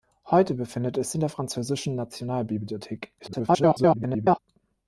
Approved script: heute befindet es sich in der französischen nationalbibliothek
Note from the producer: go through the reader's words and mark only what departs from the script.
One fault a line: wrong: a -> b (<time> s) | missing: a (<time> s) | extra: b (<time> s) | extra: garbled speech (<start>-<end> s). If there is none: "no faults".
missing: sich (1.1 s)
extra: garbled speech (3.2-4.4 s)